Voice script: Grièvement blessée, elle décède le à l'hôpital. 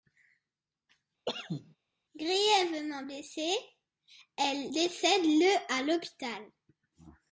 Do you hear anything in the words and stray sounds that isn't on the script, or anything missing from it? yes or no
yes